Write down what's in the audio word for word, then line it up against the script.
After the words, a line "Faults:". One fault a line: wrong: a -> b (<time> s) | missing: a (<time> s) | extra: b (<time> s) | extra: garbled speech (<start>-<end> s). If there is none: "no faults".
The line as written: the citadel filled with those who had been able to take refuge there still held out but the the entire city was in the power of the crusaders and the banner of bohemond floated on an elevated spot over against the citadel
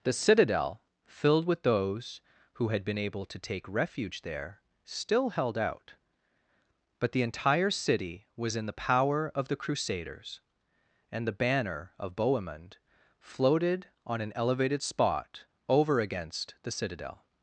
the citadel filled with those who had been able to take refuge there still held out but the entire city was in the power of the crusaders and the banner of bohemond floated on an elevated spot over against the citadel
Faults:
missing: the (7.2 s)